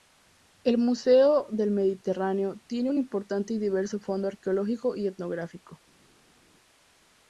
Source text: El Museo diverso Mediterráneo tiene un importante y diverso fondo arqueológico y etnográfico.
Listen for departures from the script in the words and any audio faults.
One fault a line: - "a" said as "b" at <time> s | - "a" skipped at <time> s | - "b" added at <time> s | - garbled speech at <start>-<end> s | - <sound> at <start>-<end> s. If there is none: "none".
- "diverso" said as "del" at 1.5 s